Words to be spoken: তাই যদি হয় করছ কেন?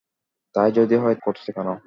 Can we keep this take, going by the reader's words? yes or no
yes